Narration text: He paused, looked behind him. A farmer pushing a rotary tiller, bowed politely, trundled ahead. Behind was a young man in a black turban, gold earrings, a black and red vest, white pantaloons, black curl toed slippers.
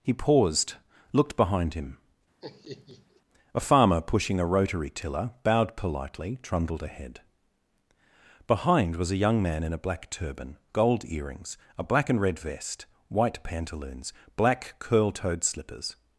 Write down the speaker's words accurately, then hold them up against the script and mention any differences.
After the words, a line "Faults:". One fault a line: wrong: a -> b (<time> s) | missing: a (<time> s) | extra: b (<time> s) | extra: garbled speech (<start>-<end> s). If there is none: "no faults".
He paused, looked behind him. A farmer pushing a rotary tiller, bowed politely, trundled ahead. Behind was a young man in a black turban, gold earrings, a black and red vest, white pantaloons, black curl toed slippers.
Faults:
no faults